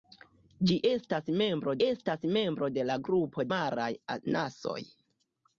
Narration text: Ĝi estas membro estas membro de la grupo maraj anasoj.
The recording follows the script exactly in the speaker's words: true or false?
true